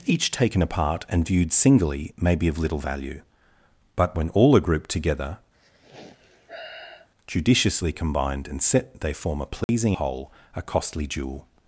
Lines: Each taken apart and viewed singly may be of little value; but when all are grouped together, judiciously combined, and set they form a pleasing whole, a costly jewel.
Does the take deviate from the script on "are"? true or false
false